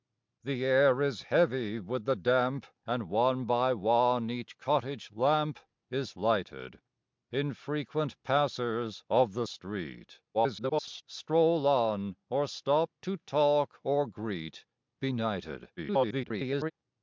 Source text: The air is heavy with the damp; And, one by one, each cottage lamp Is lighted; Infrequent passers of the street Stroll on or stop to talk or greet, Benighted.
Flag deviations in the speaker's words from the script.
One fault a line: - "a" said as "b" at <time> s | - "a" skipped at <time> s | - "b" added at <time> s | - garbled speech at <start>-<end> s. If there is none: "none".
- garbled speech at 10.3-11.0 s
- garbled speech at 15.8-16.7 s